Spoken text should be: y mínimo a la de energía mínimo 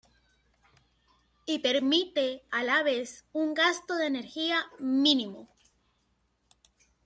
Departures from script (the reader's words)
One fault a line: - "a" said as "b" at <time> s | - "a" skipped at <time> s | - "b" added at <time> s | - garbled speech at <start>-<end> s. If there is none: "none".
- "mínimo" said as "permite" at 1.6 s
- "vez un gasto" added at 2.8 s